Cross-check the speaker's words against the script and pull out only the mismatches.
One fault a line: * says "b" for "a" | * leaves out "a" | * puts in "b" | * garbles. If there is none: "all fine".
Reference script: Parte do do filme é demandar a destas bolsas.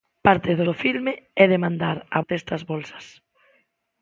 all fine